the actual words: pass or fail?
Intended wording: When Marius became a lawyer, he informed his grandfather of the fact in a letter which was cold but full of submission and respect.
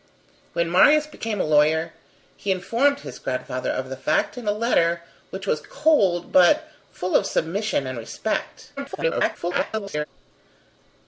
fail